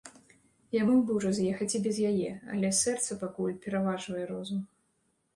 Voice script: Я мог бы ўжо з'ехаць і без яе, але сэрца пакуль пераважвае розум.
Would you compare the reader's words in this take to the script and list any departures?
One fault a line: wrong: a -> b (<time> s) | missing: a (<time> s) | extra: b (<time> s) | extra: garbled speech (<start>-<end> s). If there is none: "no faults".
no faults